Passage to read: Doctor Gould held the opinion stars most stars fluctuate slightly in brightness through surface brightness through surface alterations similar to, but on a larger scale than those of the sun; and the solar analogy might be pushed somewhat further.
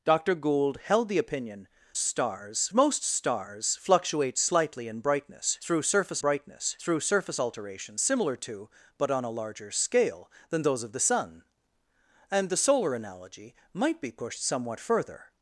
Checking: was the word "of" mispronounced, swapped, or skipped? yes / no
no